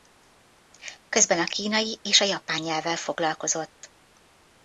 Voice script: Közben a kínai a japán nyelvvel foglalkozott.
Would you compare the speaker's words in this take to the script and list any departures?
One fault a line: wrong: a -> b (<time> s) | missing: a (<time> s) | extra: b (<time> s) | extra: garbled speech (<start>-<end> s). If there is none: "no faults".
extra: és (2.0 s)